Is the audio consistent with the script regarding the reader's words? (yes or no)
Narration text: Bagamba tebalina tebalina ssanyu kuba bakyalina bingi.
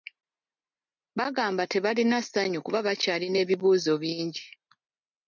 no